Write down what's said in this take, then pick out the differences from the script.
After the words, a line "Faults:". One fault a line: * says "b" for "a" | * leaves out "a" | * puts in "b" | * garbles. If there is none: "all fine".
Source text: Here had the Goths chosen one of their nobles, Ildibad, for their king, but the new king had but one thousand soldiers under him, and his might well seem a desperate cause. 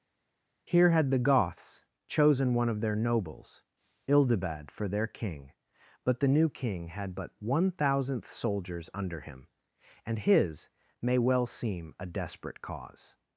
Here had the Goths chosen one of their nobles, Ildibad, for their king, but the new king had but one thousandth soldiers under him, and his may well seem a desperate cause.
Faults:
* says "thousandth" for "thousand"
* says "may" for "might"